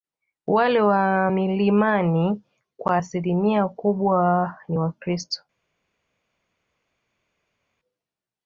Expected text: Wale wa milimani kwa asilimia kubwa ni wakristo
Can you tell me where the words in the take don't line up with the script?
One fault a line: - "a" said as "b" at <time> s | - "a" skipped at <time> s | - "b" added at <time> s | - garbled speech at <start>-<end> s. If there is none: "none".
none